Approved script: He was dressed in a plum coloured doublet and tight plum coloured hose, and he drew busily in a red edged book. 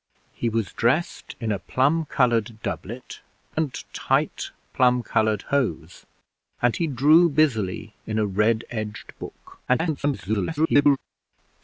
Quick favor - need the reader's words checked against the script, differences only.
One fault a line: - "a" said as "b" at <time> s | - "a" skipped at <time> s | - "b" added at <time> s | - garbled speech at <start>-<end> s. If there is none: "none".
- garbled speech at 9.7-11.0 s